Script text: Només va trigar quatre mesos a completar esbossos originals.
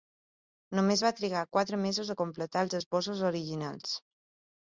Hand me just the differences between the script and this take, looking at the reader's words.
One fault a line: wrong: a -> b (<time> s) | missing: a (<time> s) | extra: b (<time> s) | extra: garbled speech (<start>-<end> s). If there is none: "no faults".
extra: els (2.7 s)